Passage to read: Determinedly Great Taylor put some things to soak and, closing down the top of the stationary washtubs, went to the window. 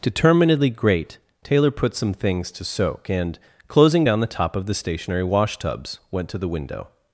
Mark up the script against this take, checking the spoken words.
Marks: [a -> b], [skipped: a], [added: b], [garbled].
Determinedly Great Taylor put some things to soak and, closing down the top of the stationary washtubs, went to the window.